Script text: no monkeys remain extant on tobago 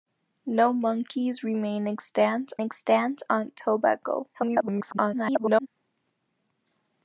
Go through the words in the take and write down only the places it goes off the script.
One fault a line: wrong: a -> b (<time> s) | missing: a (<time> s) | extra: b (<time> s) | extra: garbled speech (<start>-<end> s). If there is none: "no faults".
extra: extant (2.6 s)
extra: garbled speech (4.3-5.7 s)